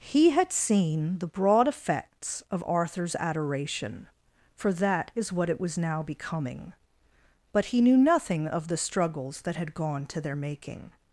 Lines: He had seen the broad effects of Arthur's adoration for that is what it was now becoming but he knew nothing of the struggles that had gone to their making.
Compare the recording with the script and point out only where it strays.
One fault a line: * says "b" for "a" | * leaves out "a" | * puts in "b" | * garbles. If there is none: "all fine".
all fine